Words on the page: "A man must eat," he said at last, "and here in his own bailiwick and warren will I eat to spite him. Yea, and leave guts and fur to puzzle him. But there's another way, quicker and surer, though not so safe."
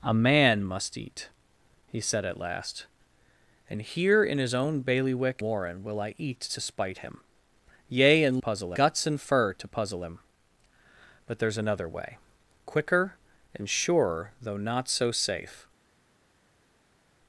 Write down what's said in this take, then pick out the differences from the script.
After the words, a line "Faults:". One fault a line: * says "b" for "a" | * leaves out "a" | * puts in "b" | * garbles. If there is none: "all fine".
"A man must eat," he said at last, "and here in his own bailiwick warren will I eat to spite him. Yea, and puzzle guts and fur to puzzle him. But there's another way, quicker and surer, though not so safe."
Faults:
* leaves out "and"
* says "puzzle" for "leave"